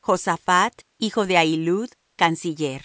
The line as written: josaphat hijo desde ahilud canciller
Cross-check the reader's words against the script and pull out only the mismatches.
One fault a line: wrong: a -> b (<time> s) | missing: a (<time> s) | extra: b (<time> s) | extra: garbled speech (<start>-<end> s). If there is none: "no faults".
wrong: desde -> de (1.2 s)